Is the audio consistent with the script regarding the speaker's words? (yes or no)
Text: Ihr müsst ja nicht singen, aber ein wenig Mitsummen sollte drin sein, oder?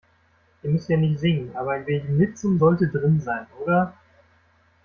yes